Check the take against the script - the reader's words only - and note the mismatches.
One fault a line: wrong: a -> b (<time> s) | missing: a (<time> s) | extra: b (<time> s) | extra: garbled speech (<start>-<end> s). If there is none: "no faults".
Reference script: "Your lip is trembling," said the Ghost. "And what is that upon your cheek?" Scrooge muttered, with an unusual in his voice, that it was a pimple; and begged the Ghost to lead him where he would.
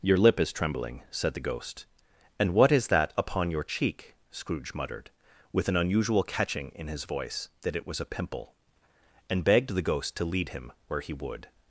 extra: catching (6.2 s)